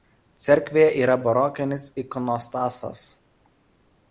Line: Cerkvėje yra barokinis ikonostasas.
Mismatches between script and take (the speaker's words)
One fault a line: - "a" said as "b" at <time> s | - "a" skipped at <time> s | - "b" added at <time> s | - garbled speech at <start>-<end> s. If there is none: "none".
none